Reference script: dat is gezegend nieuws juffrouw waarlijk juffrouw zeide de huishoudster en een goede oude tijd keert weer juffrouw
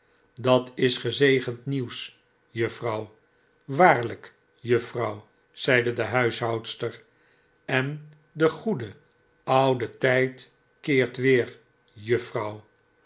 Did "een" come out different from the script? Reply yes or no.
yes